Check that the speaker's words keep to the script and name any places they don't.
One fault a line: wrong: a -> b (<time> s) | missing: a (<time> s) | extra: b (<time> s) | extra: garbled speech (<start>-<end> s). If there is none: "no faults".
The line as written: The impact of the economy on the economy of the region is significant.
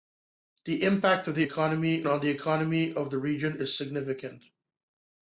no faults